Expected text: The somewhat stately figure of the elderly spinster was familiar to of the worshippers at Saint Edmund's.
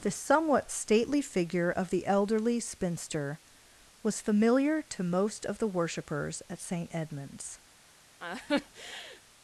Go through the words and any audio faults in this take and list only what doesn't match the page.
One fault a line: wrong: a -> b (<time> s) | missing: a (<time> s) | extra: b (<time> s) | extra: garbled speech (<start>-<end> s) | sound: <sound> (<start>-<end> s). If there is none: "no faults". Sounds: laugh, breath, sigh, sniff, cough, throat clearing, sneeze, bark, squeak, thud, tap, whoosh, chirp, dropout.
extra: most (5.0 s)
sound: laugh (8.2-9.2 s)